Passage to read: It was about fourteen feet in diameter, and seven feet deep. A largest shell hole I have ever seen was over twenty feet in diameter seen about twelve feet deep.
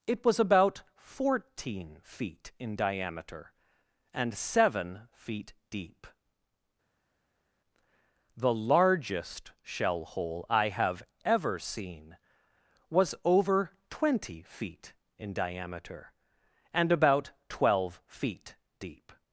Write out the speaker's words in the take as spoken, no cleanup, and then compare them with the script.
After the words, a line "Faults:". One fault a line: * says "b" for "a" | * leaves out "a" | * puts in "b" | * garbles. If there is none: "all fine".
It was about fourteen feet in diameter, and seven feet deep. The largest shell hole I have ever seen was over twenty feet in diameter and about twelve feet deep.
Faults:
* says "The" for "A"
* says "and" for "seen"